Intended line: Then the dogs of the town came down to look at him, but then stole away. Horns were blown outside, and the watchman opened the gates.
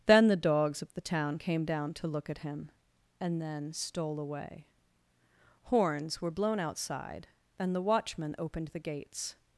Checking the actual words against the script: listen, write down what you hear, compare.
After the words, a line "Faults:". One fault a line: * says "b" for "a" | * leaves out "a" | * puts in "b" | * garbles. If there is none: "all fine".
Then the dogs of the town came down to look at him, and then stole away. Horns were blown outside, and the watchman opened the gates.
Faults:
* says "and" for "but"